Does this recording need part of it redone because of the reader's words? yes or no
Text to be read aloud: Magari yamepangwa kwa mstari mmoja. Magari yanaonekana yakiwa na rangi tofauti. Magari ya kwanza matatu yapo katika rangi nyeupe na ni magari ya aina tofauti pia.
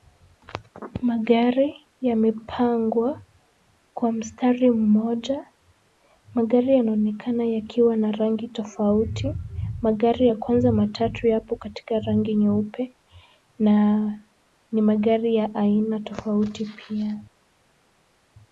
no